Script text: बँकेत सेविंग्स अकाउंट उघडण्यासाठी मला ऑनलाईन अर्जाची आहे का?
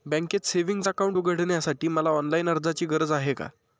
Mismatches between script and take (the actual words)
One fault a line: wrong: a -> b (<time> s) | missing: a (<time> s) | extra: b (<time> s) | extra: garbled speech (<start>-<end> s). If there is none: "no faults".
extra: गरज (2.9 s)